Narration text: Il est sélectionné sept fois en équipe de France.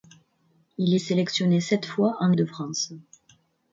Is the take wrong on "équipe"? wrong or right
wrong